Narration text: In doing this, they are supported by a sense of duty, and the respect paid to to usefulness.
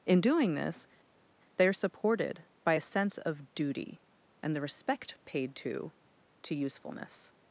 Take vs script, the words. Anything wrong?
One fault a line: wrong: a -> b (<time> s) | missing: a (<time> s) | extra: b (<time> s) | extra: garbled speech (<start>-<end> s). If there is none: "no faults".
no faults